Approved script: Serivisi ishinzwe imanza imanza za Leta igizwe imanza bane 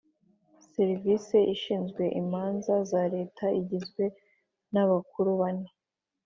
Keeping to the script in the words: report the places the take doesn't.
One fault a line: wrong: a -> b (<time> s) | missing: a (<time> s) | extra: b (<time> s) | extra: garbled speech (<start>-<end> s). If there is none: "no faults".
missing: imanza (2.7 s)
wrong: imanza -> n'abakuru (4.7 s)